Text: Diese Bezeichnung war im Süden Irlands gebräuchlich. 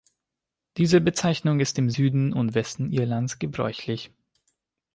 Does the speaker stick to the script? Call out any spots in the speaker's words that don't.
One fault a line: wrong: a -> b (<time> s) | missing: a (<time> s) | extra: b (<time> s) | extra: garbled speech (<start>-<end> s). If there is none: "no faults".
wrong: war -> ist (1.6 s)
extra: und Westen (2.3 s)